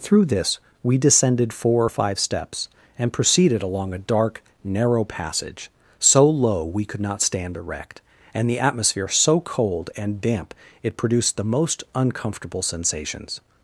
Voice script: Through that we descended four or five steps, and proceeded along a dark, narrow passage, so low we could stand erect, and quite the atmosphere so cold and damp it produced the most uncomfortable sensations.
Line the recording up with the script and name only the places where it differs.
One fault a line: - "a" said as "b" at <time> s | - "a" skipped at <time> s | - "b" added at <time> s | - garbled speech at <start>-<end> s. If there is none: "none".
- "that" said as "this" at 0.2 s
- "not" added at 7.0 s
- "quite" skipped at 8.5 s